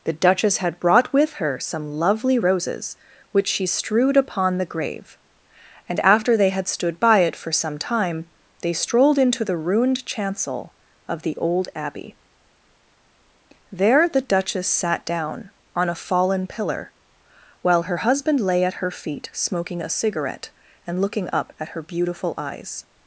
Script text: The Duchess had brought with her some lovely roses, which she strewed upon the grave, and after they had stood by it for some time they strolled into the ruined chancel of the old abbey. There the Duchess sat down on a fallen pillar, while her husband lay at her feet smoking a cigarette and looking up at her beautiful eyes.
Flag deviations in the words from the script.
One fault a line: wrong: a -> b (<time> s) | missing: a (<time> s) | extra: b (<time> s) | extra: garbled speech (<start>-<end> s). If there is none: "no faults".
no faults